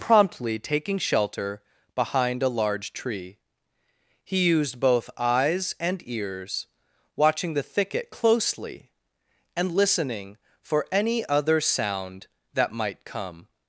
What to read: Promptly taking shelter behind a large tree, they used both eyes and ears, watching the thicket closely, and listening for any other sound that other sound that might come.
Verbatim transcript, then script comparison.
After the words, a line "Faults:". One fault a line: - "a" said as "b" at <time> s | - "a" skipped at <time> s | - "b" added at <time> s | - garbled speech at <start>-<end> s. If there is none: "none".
Promptly taking shelter behind a large tree, he used both eyes and ears, watching the thicket closely, and listening for any other sound that might come.
Faults:
- "they" said as "he" at 4.2 s
- "other sound that" skipped at 12.7 s